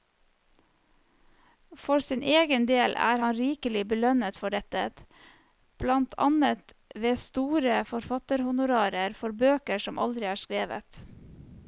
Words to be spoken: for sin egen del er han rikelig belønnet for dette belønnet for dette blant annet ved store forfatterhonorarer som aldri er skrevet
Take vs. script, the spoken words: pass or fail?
fail